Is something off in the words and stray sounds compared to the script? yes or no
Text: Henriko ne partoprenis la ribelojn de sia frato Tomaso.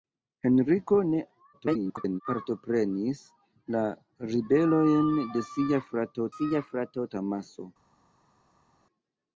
yes